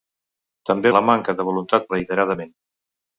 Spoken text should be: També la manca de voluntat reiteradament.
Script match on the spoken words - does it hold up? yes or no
yes